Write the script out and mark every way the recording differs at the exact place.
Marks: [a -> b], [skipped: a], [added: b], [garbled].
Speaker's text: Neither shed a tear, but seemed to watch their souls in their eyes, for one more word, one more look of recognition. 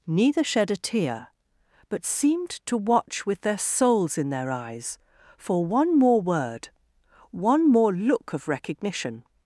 Neither shed a tear, but seemed to watch [added: with] their souls in their eyes, for one more word, one more look of recognition.